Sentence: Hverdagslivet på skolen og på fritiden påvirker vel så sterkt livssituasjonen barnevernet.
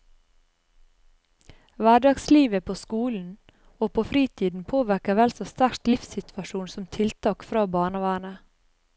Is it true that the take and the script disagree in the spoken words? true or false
true